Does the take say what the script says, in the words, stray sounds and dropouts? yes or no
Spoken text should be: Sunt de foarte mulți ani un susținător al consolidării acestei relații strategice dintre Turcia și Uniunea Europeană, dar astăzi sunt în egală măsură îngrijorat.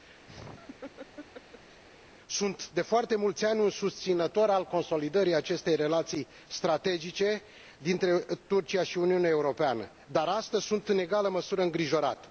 no